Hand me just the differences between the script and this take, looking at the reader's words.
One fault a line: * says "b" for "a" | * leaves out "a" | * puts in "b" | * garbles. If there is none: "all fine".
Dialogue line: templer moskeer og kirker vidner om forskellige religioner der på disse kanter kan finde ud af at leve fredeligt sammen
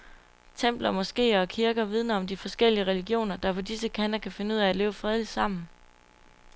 * puts in "de"